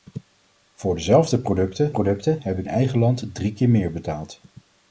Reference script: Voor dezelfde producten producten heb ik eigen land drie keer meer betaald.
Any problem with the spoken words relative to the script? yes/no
no